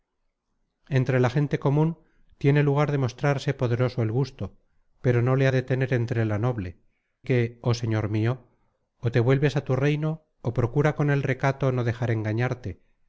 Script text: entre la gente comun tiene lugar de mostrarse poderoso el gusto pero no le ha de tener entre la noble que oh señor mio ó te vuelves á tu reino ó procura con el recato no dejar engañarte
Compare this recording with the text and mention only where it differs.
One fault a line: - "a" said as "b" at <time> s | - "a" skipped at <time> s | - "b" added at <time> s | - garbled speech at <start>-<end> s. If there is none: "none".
none